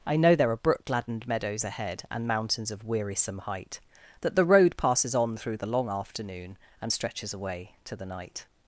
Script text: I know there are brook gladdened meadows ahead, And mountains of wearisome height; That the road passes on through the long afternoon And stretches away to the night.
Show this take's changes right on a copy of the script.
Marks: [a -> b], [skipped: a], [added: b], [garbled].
I know there are brook gladdened meadows ahead, And mountains of wearisome height; That the road passes on through the long afternoon And stretches away to the night.